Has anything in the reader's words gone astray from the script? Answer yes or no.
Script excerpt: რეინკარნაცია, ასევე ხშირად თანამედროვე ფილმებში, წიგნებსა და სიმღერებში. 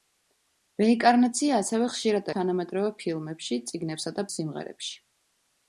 no